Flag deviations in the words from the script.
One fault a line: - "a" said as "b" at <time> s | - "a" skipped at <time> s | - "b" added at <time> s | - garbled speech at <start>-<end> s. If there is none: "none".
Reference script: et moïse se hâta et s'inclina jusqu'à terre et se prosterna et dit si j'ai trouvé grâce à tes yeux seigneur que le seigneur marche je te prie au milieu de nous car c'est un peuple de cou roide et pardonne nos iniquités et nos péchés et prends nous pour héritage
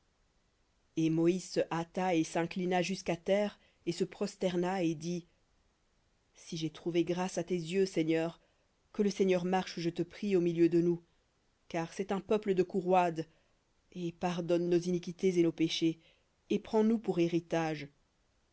none